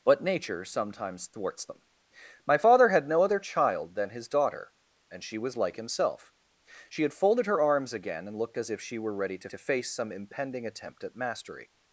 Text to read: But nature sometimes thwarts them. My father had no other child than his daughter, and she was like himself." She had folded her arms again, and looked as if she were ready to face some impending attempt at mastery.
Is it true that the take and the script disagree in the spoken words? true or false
true